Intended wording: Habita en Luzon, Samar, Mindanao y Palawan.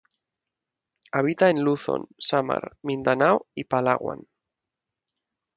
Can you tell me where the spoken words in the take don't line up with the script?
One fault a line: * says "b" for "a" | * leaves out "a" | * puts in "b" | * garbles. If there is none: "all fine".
all fine